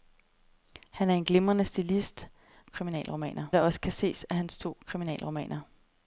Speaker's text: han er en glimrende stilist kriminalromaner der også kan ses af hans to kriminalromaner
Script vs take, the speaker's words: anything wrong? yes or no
no